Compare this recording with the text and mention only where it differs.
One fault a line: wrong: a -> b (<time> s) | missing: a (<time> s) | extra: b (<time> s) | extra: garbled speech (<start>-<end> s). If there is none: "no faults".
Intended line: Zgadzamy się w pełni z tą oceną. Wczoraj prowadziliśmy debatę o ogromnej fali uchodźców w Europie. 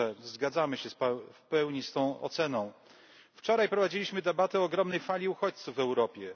no faults